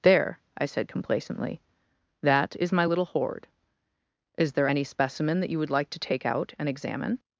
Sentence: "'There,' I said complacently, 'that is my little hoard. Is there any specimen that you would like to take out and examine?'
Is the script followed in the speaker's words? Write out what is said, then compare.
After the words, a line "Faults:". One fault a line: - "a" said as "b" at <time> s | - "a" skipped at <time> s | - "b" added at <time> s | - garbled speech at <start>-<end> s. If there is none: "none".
"'There,' I said complacently, 'that is my little hoard. Is there any specimen that you would like to take out and examine?'
Faults:
none